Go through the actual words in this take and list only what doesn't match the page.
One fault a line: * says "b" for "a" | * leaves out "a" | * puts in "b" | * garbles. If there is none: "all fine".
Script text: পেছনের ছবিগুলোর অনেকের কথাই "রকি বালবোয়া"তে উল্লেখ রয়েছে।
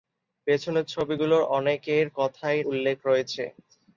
* leaves out "রকি বালবোয়া"তে"